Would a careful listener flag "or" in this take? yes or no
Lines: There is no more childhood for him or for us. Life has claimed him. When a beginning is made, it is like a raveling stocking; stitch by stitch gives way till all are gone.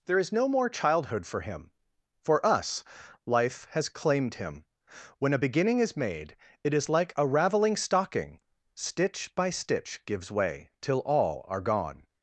yes